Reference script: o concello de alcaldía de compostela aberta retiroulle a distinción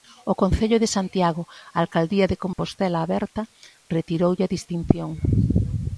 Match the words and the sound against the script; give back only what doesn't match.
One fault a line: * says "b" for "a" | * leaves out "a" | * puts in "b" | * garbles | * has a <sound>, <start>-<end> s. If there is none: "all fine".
* puts in "santiago"
* has a dropout, 2.5-2.6 s